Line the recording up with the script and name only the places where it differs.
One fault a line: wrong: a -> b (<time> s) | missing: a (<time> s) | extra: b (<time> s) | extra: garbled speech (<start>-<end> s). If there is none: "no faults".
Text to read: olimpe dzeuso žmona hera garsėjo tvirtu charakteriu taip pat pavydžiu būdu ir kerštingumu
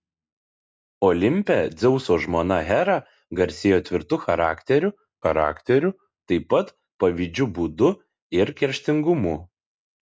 extra: charakteriu (5.2 s)